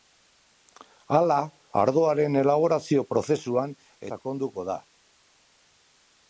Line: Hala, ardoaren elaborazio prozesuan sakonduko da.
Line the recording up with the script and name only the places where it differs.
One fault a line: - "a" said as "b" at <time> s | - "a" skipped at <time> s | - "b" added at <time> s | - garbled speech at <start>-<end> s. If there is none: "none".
none